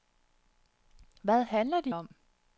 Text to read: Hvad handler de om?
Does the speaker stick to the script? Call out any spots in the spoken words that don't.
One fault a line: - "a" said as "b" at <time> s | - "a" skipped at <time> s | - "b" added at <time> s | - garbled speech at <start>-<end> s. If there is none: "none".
none